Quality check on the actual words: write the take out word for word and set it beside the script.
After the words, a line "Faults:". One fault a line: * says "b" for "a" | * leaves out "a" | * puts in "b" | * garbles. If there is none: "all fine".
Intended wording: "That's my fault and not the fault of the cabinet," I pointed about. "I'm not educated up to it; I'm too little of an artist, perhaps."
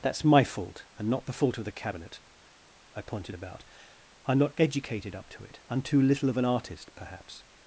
"That's my fault and not the fault of the cabinet," I pointed about. "I'm not educated up to it; I'm too little of an artist, perhaps."
Faults:
all fine